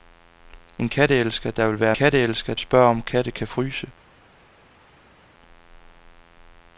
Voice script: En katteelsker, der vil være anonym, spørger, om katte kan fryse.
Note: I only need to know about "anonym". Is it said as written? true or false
false